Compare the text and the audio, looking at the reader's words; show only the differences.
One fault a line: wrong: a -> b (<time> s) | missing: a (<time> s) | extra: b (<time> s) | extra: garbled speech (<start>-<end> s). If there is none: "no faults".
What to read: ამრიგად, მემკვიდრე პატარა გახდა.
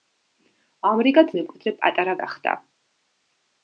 no faults